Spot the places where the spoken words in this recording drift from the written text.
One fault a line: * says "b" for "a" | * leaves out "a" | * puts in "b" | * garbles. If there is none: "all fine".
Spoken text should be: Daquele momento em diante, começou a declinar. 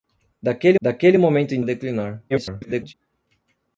* puts in "daquele"
* leaves out "diante começou"
* garbles